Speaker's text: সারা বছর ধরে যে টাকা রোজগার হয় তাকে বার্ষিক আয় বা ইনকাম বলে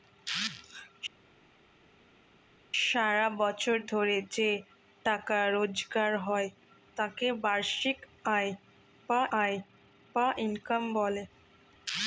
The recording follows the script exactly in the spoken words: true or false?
false